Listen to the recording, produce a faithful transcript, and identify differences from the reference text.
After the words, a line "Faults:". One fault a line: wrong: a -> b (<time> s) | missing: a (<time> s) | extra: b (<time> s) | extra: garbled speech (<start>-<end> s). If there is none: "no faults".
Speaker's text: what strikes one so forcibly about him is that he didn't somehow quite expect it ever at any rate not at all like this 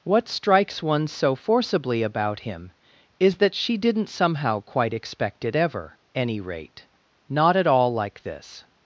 what strikes one so forcibly about him is that she didn't somehow quite expect it ever any rate not at all like this
Faults:
wrong: he -> she (3.5 s)
missing: at (6.0 s)